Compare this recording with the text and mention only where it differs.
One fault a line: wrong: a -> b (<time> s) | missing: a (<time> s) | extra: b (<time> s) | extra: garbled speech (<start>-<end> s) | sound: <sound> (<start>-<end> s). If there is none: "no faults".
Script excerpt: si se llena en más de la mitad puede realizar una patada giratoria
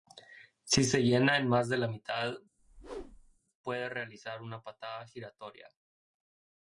sound: whoosh (2.6-3.4 s)